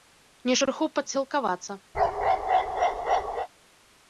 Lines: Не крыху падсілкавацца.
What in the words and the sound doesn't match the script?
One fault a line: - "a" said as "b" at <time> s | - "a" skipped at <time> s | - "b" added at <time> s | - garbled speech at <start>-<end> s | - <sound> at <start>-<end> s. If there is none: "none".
- bark at 1.9-3.5 s